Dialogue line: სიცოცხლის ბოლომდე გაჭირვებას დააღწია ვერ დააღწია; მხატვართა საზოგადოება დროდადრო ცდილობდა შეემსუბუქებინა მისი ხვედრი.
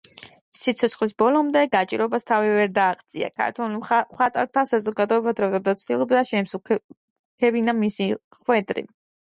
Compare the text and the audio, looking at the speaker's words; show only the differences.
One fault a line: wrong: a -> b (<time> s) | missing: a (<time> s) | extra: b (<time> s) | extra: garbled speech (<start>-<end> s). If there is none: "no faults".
wrong: დააღწია -> თავი (2.3 s)
extra: ქართველ (3.4 s)